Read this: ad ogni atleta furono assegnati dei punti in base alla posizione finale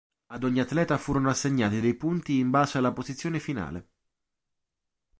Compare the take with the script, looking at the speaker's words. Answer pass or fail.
pass